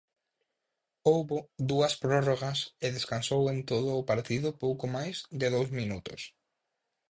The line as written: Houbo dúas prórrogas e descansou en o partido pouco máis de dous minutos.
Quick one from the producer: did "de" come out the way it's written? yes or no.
yes